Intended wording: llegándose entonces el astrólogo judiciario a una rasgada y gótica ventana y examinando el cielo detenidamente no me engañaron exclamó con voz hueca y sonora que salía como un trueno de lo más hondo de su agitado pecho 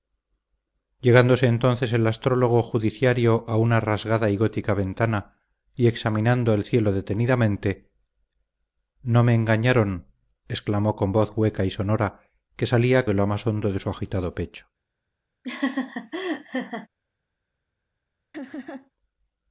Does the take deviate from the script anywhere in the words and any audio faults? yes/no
yes